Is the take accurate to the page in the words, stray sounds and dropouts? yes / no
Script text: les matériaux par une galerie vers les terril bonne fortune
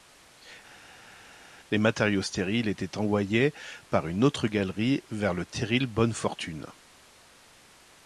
no